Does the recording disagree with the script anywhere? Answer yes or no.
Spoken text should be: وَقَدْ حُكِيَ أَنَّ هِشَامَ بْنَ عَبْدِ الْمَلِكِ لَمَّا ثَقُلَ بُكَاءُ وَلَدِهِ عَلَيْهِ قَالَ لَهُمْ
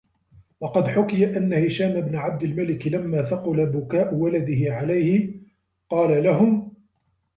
no